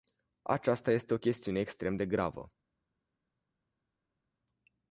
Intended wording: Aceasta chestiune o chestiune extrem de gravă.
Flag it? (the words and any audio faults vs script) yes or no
yes